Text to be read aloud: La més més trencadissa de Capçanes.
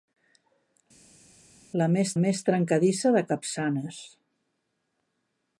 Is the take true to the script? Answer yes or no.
yes